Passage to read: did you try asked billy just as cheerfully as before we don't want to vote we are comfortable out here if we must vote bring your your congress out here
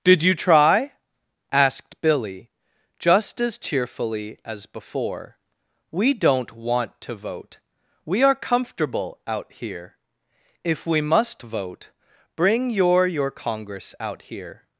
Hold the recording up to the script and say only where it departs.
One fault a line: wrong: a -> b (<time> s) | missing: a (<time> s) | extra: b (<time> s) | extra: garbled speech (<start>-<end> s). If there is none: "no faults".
no faults